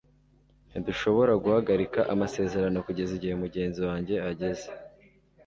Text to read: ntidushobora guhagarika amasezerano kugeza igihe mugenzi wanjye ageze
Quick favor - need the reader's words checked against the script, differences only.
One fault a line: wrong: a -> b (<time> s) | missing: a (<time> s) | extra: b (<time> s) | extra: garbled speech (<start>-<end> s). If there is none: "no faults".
no faults